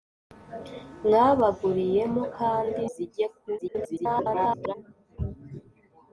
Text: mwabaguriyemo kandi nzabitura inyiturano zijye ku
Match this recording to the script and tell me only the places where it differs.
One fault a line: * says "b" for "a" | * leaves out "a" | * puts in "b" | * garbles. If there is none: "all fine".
* leaves out "nzabitura inyiturano"
* garbles